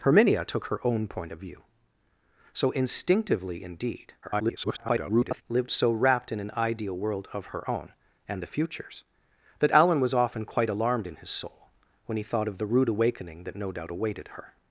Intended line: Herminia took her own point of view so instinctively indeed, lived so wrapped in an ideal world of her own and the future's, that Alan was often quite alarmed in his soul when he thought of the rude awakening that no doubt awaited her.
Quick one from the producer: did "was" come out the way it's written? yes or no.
yes